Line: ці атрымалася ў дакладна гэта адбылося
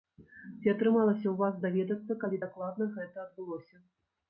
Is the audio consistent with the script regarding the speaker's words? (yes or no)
no